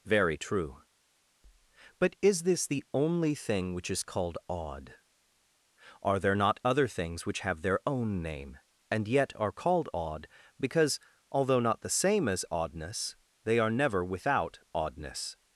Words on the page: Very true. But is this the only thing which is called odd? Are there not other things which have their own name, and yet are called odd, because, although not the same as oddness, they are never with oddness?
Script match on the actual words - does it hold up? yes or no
no